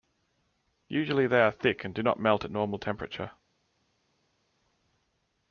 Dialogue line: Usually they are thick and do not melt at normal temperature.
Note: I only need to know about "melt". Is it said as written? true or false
true